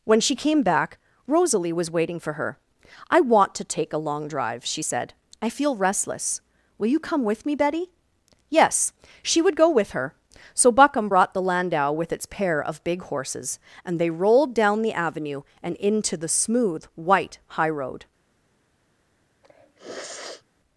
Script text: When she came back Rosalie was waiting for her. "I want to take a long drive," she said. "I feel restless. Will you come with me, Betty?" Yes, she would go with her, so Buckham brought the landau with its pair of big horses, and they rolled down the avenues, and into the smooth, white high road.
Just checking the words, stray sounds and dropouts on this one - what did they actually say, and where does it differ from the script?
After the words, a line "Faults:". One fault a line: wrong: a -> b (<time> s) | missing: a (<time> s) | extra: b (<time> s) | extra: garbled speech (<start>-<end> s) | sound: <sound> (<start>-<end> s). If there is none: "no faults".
When she came back Rosalie was waiting for her. "I want to take a long drive," she said. "I feel restless. Will you come with me, Betty?" Yes, she would go with her, so Buckham brought the landau with its pair of big horses, and they rolled down the avenue, and into the smooth, white high road.
Faults:
wrong: avenues -> avenue (14.9 s)
sound: sniff (19.4-20.4 s)